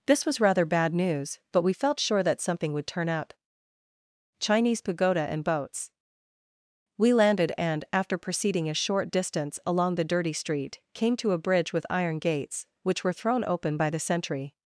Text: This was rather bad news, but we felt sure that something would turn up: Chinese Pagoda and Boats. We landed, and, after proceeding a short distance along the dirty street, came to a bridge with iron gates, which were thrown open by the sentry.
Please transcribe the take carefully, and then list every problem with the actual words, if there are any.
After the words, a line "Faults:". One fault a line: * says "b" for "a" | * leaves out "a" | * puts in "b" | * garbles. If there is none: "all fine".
This was rather bad news, but we felt sure that something would turn up: Chinese Pagoda and Boats. We landed, and, after proceeding a short distance along the dirty street, came to a bridge with iron gates, which were thrown open by the sentry.
Faults:
all fine